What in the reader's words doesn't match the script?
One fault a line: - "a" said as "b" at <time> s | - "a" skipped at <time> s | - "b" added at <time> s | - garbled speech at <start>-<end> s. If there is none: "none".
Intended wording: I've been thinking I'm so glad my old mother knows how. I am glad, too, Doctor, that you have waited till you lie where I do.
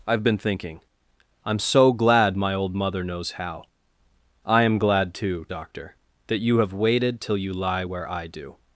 none